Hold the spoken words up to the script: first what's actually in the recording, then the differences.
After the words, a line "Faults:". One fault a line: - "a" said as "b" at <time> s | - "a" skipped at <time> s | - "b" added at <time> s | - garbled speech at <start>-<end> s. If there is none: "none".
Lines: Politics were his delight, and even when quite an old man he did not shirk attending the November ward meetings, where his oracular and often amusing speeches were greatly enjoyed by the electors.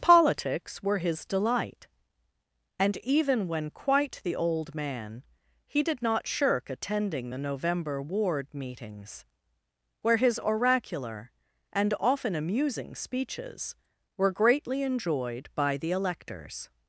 Politics were his delight, and even when quite the old man he did not shirk attending the November ward meetings, where his oracular and often amusing speeches were greatly enjoyed by the electors.
Faults:
- "an" said as "the" at 4.2 s